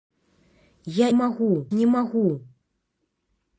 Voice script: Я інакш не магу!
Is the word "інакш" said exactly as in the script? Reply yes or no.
no